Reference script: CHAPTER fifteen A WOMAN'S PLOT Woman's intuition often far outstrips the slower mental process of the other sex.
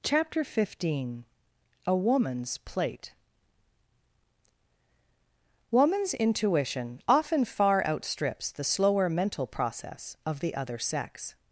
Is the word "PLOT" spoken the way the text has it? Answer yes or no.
no